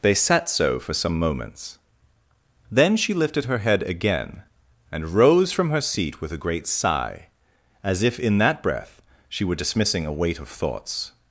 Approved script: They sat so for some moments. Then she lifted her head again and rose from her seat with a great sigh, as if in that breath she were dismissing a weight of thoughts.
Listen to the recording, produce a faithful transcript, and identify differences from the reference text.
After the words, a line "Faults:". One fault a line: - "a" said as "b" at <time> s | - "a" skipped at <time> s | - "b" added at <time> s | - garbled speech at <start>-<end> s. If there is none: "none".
They sat so for some moments. Then she lifted her head again and rose from her seat with a great sigh, as if in that breath she were dismissing a weight of thoughts.
Faults:
none